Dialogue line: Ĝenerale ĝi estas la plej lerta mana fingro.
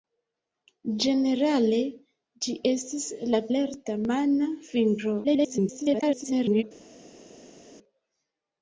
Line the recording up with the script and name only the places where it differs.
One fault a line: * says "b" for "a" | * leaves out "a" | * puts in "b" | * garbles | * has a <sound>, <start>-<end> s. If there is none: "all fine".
* leaves out "plej"
* garbles